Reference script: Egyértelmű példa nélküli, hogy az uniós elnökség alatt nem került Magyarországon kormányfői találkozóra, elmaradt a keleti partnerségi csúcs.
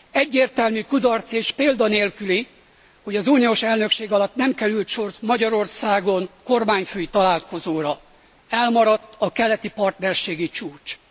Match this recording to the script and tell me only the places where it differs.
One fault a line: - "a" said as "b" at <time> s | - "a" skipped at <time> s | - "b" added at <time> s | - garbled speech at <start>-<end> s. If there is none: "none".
- "kudarc és" added at 0.8 s
- "sor" added at 4.9 s